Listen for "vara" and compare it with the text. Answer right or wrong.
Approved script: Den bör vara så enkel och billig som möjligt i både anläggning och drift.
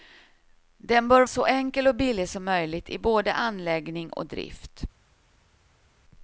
wrong